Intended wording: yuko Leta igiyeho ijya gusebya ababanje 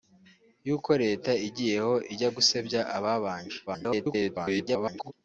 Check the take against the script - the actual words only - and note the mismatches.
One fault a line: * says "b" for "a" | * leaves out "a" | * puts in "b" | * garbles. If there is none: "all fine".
* garbles